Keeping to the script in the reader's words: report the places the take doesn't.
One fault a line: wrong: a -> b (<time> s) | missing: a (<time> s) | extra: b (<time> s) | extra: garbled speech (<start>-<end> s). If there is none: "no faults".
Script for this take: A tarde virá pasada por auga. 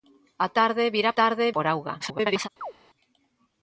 wrong: pasada -> tarde (1.2 s)
extra: garbled speech (2.0-2.5 s)